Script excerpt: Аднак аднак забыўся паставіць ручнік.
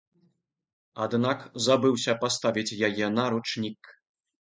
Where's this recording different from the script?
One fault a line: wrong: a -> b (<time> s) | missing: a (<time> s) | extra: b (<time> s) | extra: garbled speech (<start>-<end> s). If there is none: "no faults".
missing: аднак (1.4 s)
extra: яе на (2.9 s)